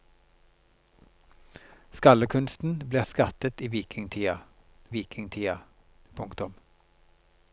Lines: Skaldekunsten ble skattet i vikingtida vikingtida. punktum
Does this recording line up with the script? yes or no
yes